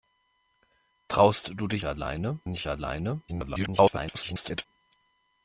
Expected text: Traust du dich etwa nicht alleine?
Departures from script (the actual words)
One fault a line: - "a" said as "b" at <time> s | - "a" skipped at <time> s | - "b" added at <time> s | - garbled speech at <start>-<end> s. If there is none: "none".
- "etwa" said as "alleine" at 1.8 s
- garbled speech at 3.3-4.7 s